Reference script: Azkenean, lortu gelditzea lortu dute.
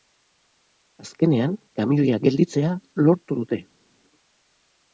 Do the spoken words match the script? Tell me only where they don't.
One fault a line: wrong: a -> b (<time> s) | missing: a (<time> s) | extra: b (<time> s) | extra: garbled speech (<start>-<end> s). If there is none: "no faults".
wrong: lortu -> kamioia (1.8 s)